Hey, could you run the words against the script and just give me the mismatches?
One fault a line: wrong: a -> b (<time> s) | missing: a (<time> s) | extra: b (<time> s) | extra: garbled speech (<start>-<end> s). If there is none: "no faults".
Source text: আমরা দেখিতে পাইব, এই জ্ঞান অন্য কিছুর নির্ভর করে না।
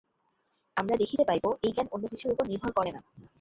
extra: উপর (2.3 s)